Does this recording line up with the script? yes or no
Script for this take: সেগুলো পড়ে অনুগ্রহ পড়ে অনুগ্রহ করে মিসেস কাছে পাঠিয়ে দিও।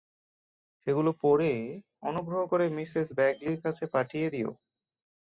no